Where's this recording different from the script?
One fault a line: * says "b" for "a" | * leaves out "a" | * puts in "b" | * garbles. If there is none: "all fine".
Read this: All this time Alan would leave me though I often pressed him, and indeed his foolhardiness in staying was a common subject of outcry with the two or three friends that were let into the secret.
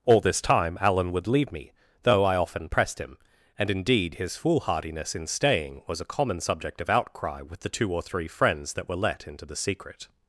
all fine